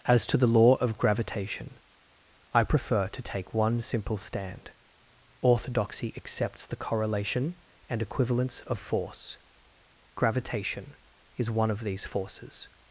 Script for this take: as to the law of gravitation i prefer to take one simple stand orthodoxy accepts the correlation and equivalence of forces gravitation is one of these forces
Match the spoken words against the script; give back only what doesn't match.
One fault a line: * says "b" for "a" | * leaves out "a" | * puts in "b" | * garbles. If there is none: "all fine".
* says "force" for "forces"